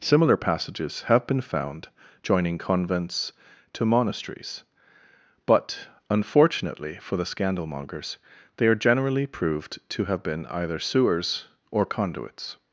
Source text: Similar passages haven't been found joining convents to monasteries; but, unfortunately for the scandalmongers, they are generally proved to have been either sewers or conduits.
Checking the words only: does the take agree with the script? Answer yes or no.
no